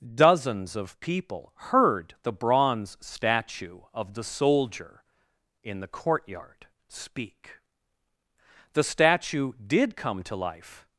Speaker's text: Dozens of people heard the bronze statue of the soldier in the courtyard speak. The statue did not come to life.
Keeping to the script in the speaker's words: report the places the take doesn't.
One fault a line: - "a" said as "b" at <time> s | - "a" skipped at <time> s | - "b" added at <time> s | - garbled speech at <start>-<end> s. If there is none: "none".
- "not" skipped at 10.0 s